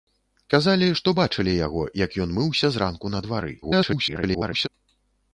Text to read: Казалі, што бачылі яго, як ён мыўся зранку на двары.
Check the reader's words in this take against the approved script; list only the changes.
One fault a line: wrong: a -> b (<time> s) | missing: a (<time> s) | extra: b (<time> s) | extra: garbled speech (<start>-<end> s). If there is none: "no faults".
extra: garbled speech (3.6-4.7 s)